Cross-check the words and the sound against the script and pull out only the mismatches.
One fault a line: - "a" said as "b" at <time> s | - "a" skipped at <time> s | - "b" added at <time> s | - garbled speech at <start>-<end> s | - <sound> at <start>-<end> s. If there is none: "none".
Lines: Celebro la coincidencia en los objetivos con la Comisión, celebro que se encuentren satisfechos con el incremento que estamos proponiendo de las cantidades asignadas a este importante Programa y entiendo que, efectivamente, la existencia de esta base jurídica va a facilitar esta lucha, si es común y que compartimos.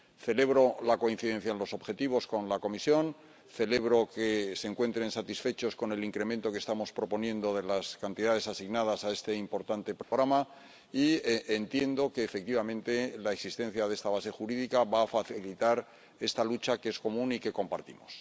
- dropout at 10.0-10.1 s
- "si" said as "que" at 16.8 s